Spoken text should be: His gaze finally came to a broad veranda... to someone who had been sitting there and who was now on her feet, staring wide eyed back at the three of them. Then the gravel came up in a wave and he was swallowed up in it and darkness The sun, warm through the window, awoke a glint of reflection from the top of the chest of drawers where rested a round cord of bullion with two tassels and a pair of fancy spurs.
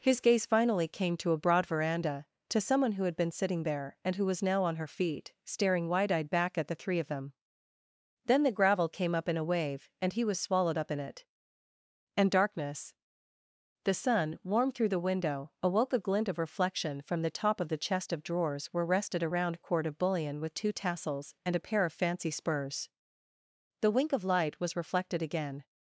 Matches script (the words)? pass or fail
fail